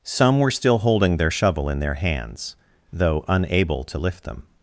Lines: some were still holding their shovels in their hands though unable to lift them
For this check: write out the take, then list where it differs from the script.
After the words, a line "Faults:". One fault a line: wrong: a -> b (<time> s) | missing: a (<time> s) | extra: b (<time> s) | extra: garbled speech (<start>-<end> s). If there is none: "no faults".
some were still holding their shovel in their hands though unable to lift them
Faults:
wrong: shovels -> shovel (1.3 s)